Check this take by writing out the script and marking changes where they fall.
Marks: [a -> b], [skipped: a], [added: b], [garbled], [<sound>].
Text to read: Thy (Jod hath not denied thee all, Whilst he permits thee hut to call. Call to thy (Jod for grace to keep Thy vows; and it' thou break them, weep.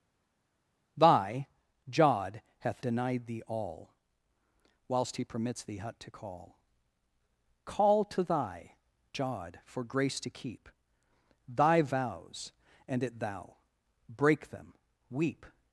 Thy (Jod hath [skipped: not] denied thee all, Whilst he permits thee hut to call. Call to thy (Jod for grace to keep Thy vows; and it' thou break them, weep.